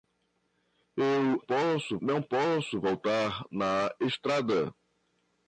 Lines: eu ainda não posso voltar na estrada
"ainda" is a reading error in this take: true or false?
true